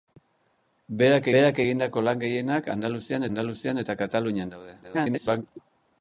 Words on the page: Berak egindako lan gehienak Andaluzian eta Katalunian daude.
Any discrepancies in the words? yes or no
yes